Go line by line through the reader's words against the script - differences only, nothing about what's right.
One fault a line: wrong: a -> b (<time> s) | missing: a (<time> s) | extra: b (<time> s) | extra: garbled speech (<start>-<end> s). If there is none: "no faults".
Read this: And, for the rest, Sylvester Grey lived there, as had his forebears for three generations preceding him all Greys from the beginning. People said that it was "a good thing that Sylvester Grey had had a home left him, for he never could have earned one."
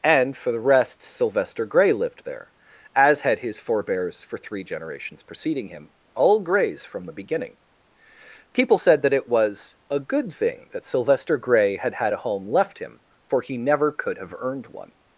no faults